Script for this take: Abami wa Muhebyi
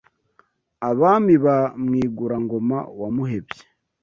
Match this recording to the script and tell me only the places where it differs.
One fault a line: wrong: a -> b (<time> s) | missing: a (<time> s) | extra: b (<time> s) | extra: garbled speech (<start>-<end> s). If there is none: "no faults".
extra: ba Mwigura ngoma (1.4 s)